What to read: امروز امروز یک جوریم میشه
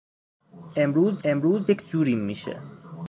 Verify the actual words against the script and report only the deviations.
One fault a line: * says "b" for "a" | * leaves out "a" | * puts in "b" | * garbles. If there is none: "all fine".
all fine